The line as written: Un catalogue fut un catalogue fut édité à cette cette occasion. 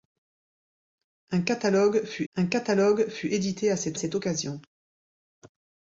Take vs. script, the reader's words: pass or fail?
pass